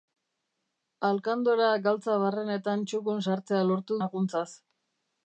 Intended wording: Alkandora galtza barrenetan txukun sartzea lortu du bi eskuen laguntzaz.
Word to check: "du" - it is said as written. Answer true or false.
false